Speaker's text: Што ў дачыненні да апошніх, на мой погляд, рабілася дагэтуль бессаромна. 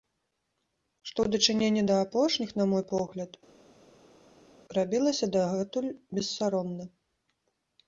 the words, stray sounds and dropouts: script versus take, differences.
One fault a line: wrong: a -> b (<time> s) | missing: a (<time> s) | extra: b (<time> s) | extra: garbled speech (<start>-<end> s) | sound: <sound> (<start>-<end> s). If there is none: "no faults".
no faults